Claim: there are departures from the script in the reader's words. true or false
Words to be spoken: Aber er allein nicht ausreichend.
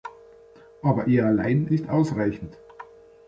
false